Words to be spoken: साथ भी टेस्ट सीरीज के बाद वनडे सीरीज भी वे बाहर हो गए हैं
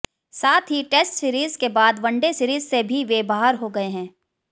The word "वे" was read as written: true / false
true